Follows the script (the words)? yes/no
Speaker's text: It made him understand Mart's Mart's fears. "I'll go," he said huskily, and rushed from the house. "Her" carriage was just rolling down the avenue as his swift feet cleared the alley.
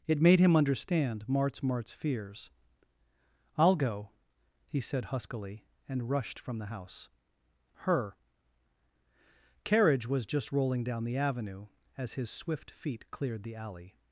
yes